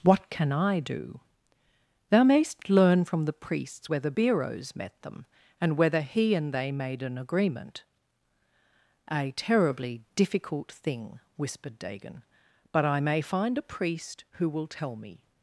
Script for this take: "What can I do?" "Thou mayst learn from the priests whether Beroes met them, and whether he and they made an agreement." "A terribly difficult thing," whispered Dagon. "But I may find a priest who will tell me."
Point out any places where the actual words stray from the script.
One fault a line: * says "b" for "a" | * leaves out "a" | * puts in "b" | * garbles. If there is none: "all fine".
all fine